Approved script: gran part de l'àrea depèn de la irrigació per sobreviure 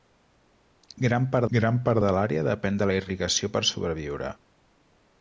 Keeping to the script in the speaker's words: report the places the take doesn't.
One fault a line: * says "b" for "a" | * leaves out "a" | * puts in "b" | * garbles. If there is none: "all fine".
* puts in "gran part"